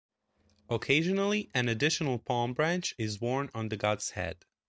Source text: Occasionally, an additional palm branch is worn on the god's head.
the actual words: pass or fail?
pass